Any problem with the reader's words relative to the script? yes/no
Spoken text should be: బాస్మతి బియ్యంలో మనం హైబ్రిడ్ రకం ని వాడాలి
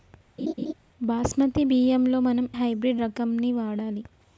no